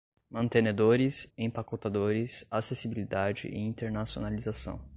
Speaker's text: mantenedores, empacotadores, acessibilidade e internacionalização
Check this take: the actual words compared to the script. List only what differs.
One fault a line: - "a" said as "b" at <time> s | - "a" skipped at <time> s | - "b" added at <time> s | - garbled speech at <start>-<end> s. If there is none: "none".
none